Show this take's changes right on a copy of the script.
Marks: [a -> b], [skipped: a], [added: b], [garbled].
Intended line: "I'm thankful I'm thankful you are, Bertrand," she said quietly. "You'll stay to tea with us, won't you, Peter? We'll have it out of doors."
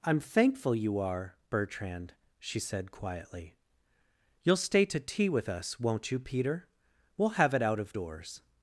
"I'm thankful [skipped: I'm thankful] you are, Bertrand," she said quietly. "You'll stay to tea with us, won't you, Peter? We'll have it out of doors."